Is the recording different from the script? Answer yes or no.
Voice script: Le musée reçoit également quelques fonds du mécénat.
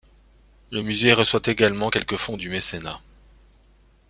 no